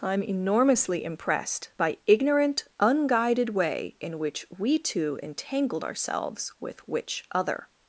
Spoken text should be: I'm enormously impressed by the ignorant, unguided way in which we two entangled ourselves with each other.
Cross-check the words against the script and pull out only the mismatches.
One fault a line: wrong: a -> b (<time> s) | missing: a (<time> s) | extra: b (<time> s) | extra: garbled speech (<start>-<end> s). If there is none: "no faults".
missing: the (2.0 s)
wrong: each -> which (6.9 s)